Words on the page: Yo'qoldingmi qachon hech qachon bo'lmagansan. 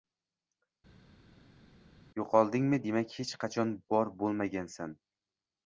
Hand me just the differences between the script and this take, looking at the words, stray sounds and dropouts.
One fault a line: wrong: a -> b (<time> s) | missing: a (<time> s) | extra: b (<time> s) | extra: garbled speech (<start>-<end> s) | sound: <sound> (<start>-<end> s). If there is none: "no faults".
wrong: qachon -> demak (2.9 s)
extra: bor (4.0 s)